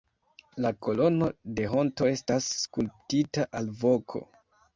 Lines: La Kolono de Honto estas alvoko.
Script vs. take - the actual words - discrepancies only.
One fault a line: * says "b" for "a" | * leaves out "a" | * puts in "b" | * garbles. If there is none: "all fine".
* puts in "skulptita"